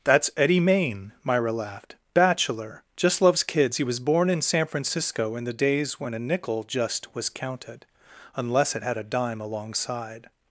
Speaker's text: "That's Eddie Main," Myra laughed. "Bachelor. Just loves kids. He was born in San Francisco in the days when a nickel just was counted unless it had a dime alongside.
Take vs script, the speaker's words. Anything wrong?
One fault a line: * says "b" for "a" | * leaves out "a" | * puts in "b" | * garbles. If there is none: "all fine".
all fine